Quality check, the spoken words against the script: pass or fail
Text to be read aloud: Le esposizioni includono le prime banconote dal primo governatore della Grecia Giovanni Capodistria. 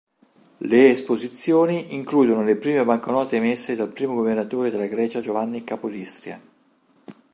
fail